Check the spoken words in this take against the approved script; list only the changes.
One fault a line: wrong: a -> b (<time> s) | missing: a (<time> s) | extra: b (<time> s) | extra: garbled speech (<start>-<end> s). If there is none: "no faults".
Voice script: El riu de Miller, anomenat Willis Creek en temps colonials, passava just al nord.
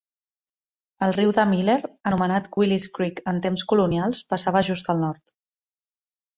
no faults